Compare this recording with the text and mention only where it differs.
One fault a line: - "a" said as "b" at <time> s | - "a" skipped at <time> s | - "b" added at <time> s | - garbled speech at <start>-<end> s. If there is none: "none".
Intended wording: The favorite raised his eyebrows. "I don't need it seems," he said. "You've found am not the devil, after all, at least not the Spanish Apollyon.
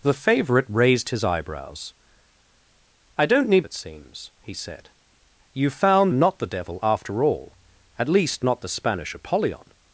none